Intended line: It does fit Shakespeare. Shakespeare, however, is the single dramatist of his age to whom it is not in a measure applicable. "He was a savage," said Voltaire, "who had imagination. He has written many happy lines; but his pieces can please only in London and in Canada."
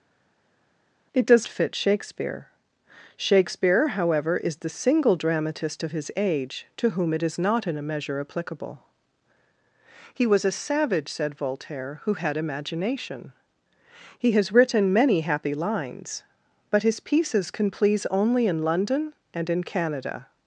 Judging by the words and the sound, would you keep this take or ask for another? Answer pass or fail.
pass